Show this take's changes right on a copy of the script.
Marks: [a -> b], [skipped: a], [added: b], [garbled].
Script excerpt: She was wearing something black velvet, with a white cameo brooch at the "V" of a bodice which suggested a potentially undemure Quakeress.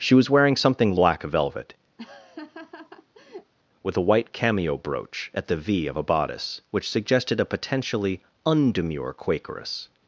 She was wearing something black velvet, with a white cameo brooch at the "V" of a bodice which suggested a potentially undemure Quakeress.